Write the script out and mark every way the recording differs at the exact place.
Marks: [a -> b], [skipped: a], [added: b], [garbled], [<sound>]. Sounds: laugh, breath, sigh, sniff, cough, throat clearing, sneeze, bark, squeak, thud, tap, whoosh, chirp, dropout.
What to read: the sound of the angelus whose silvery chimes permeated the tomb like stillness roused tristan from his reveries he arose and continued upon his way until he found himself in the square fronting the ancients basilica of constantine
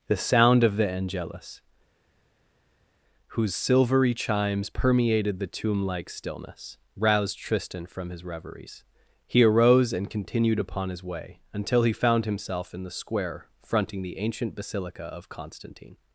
the sound of the angelus whose silvery chimes permeated the tomb like stillness roused tristan from his reveries he arose and continued upon his way until he found himself in the square fronting the [ancients -> ancient] basilica of constantine